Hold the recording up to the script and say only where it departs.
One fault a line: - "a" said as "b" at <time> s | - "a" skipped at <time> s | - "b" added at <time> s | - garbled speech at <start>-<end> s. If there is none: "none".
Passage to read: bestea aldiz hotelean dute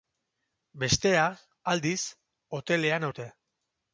none